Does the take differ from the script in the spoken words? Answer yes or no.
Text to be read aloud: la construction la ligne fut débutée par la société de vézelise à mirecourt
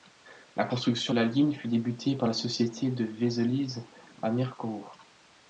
no